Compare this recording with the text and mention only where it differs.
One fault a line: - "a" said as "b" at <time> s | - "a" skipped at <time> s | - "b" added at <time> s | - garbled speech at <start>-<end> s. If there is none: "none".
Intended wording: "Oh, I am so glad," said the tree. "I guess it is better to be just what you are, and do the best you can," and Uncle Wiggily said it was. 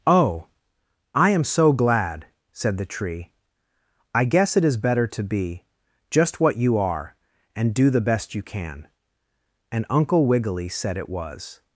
none